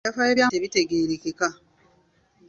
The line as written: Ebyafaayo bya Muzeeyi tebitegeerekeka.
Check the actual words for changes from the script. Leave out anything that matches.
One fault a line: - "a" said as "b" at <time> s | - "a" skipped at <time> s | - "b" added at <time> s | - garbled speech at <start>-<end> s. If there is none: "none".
- "Muzeeyi" skipped at 0.5 s